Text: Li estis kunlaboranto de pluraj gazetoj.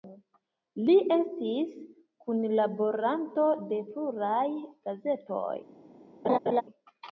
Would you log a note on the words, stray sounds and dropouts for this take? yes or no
yes